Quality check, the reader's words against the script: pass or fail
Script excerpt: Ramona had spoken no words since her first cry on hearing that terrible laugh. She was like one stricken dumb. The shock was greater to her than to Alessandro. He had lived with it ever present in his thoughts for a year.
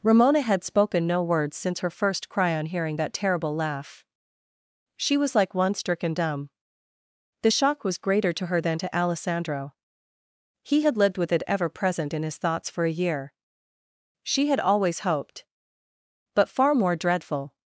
fail